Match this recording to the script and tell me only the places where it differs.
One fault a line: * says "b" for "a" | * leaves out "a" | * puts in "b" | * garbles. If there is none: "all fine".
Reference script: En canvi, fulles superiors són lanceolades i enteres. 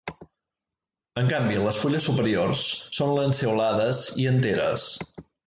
* puts in "les"